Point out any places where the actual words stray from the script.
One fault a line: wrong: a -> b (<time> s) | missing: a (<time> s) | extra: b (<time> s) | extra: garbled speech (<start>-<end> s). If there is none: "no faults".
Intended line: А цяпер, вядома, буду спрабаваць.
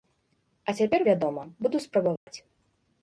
no faults